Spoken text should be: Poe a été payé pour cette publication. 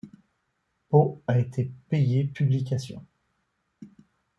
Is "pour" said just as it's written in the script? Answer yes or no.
no